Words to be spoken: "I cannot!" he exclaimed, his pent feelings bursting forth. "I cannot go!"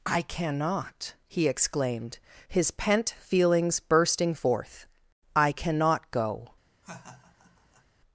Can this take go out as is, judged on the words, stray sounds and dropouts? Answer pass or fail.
fail